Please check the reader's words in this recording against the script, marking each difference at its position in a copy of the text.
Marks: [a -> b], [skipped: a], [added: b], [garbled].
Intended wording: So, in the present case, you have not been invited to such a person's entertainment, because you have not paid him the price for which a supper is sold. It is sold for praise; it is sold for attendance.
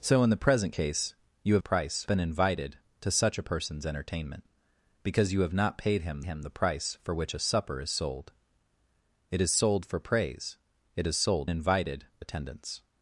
So, in the present case, you have [not -> price] been invited to such a person's entertainment, because you have not paid him [added: him] the price for which a supper is sold. It is sold for praise; it is sold [for -> invited] attendance.